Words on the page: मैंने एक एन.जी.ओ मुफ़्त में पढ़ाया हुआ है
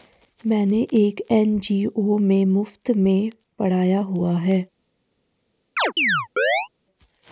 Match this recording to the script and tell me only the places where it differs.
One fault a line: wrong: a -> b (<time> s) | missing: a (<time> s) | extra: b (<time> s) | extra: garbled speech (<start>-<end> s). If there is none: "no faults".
extra: में (2.2 s)